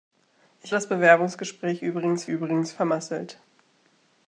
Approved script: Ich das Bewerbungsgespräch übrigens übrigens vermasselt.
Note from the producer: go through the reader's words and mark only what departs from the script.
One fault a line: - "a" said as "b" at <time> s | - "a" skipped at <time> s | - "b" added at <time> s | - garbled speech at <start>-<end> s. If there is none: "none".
none